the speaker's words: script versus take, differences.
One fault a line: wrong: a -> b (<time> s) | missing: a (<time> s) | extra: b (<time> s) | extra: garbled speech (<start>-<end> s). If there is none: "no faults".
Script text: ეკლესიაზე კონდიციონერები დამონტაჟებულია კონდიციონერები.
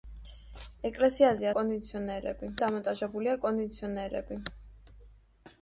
no faults